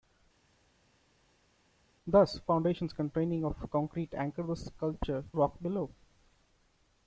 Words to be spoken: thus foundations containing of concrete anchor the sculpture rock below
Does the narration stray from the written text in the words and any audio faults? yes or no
no